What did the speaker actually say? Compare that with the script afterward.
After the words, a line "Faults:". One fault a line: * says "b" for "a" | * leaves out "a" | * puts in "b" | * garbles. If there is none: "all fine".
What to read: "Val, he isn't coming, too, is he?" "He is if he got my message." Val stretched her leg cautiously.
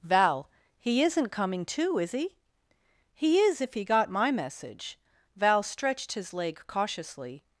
"Val, he isn't coming, too, is he?" "He is if he got my message." Val stretched his leg cautiously.
Faults:
* says "his" for "her"